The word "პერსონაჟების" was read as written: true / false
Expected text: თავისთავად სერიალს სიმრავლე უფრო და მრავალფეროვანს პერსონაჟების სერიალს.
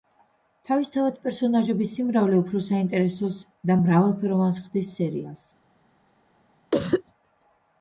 false